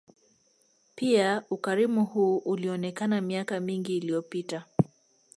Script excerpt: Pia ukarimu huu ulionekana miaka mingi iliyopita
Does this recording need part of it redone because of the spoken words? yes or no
no